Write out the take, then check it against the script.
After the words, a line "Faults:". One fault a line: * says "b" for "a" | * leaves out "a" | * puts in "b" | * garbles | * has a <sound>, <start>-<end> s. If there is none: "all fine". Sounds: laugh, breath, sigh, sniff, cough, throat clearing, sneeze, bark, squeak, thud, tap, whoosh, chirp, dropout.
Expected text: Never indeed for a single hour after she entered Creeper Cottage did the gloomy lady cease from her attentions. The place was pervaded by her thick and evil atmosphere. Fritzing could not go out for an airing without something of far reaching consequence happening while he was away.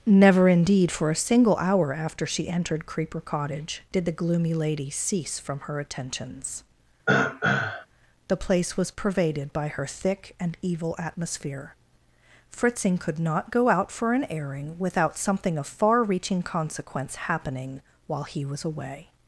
Never indeed for a single hour after she entered Creeper Cottage did the gloomy lady cease from her attentions. The place was pervaded by her thick and evil atmosphere. Fritzing could not go out for an airing without something of far reaching consequence happening while he was away.
Faults:
* has a throat clearing, 7.1-7.9 s